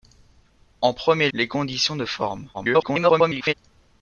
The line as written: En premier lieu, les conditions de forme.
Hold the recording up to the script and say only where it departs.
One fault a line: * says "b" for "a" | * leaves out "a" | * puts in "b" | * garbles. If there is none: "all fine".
* leaves out "lieu"
* garbles